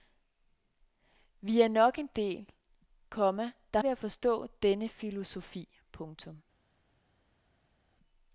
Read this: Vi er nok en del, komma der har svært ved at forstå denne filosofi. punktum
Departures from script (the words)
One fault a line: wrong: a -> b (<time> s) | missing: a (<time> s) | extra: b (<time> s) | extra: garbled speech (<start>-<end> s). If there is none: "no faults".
missing: har svært (3.8 s)